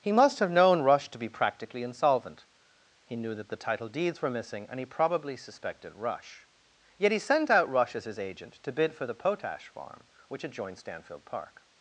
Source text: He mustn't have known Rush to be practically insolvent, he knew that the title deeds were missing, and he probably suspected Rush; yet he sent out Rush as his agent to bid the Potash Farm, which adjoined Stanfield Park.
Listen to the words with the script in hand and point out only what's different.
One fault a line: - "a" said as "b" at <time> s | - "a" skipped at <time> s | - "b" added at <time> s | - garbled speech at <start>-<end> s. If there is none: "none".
- "mustn't" said as "must" at 0.1 s
- "for" added at 8.9 s